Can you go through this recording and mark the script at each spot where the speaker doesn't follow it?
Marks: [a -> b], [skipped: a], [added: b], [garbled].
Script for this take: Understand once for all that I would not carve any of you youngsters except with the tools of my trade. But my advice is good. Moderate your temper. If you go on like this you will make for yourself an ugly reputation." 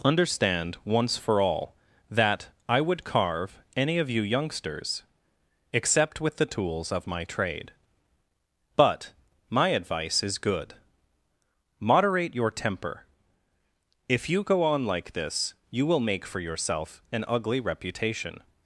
Understand once for all that I would [skipped: not] carve any of you youngsters except with the tools of my trade. But my advice is good. Moderate your temper. If you go on like this you will make for yourself an ugly reputation."